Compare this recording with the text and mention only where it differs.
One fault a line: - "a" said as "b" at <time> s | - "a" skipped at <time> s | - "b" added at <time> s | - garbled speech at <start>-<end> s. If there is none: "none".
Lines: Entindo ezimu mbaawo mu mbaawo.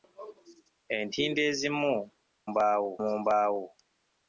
none